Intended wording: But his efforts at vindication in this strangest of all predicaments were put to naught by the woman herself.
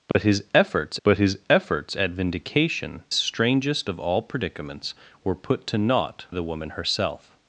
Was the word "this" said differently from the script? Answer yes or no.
yes